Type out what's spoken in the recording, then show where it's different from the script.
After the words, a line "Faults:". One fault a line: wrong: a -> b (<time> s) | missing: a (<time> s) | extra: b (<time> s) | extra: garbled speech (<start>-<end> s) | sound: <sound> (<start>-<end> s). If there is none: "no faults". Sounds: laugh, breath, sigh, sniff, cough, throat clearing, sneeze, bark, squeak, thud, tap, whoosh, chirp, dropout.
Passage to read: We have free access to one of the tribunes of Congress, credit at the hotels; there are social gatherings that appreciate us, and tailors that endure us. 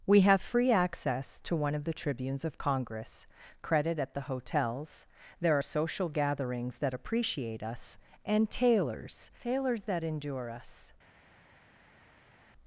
We have free access to one of the tribunes of Congress, credit at the hotels; there are social gatherings that appreciate us, and tailors tailors that endure us.
Faults:
extra: tailors (9.4 s)